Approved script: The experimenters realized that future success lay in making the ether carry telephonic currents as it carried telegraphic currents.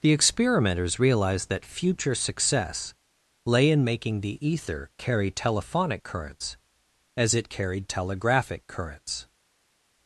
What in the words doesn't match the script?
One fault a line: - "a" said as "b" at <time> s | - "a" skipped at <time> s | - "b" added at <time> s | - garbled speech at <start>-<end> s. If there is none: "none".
none